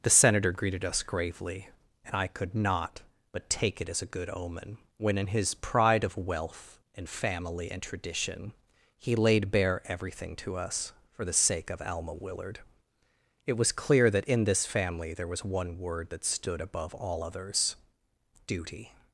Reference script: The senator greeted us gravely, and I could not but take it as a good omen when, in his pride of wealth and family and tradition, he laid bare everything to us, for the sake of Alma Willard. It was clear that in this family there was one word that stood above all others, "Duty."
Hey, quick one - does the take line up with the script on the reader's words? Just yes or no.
yes